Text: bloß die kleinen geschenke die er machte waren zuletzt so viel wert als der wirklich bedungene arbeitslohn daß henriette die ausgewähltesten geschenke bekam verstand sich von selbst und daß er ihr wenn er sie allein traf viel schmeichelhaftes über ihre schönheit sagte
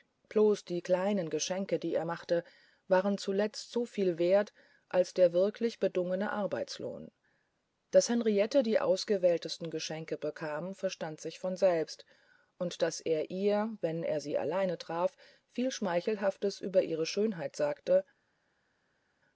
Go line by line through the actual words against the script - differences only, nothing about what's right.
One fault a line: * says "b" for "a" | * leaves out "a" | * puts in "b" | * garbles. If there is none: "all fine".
all fine